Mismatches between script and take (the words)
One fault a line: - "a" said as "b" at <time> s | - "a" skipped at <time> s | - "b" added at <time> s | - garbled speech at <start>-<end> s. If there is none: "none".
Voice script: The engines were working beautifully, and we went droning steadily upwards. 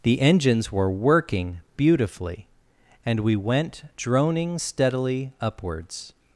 none